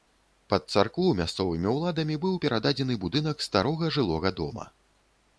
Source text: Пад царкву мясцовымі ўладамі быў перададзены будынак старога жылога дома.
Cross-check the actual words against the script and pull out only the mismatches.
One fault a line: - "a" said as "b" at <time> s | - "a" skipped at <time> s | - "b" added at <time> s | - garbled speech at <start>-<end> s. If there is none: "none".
none